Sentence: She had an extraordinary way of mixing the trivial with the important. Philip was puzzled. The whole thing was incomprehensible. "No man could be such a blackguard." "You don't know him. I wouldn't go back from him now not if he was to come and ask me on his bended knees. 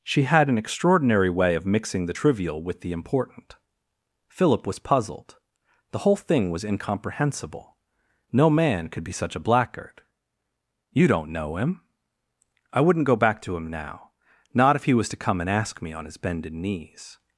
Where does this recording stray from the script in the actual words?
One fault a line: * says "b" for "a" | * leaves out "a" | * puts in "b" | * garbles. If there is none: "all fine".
* says "to" for "from"